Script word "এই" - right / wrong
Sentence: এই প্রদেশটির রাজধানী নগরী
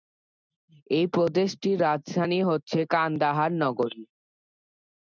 right